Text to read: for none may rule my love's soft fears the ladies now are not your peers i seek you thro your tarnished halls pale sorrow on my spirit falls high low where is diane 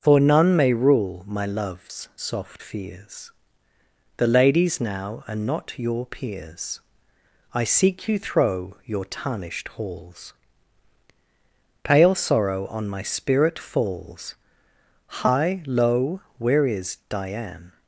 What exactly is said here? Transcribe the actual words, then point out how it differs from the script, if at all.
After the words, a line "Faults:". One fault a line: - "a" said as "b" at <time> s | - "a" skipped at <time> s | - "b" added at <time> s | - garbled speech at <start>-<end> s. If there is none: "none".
for none may rule my love's soft fears the ladies now are not your peers i seek you thro your tarnished halls pale sorrow on my spirit falls high low where is diane
Faults:
none